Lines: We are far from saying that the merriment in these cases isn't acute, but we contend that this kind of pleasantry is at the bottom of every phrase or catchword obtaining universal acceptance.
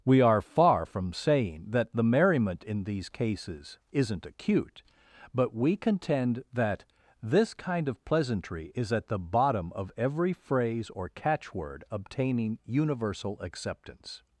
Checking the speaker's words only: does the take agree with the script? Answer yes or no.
yes